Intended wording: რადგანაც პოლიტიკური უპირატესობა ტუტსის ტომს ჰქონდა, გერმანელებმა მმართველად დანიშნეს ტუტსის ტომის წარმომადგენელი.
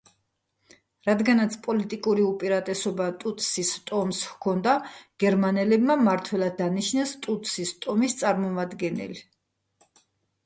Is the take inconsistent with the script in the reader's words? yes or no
no